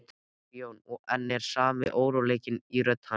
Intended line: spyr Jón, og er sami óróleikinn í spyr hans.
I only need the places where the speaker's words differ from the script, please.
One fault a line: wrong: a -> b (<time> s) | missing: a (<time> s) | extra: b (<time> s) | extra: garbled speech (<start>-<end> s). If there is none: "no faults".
extra: enn (1.1 s)
wrong: spyr -> rödd (2.8 s)